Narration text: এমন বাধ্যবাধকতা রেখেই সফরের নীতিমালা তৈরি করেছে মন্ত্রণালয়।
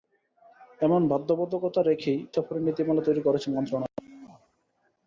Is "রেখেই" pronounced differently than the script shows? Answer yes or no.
no